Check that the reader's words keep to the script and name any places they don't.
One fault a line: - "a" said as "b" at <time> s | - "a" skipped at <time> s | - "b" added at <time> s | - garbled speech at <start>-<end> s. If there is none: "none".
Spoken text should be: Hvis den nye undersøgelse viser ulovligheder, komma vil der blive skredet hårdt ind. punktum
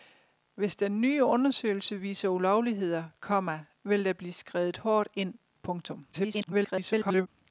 - garbled speech at 6.1-7.3 s